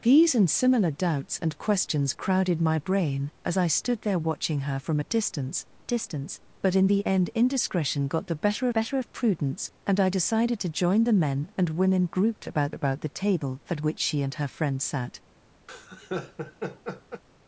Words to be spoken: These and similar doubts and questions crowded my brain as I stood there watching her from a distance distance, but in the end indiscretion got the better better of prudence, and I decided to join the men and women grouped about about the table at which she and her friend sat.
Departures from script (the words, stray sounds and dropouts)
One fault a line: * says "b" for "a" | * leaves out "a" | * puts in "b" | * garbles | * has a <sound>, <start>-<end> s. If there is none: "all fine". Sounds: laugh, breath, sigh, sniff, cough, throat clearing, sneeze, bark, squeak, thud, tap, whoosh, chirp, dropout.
* has a laugh, 15.7-17.2 s